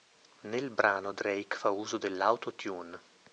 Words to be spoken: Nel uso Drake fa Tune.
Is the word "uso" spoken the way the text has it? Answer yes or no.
no